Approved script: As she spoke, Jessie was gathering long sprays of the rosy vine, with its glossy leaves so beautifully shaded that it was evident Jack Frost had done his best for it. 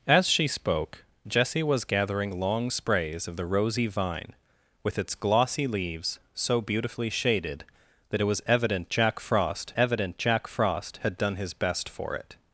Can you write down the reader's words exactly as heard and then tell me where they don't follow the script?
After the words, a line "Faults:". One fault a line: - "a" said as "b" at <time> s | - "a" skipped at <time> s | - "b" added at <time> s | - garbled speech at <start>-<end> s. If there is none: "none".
As she spoke, Jessie was gathering long sprays of the rosy vine, with its glossy leaves so beautifully shaded that it was evident Jack Frost evident Jack Frost had done his best for it.
Faults:
- "evident Jack Frost" added at 9.8 s